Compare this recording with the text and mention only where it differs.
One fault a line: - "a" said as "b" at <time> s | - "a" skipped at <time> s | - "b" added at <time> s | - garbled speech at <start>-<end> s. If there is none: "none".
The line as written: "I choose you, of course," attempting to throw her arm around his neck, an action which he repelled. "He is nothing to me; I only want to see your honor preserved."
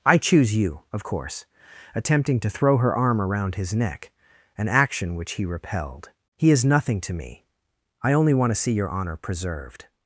none